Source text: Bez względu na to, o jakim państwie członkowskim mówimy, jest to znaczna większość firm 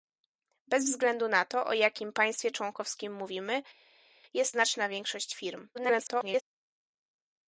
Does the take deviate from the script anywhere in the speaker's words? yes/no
yes